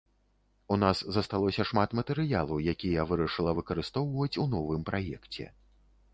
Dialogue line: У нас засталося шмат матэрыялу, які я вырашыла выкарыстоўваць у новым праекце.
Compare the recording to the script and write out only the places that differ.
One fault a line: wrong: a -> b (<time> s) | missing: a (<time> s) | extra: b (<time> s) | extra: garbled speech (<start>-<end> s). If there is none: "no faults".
no faults